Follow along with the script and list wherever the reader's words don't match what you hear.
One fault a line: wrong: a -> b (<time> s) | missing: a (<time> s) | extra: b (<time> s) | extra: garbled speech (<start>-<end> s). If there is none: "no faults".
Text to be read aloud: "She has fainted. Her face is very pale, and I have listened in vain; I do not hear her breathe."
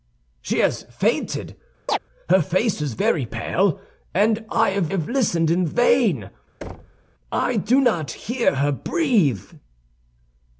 extra: have (4.9 s)